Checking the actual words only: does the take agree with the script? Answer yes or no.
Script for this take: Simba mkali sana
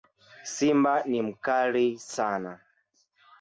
no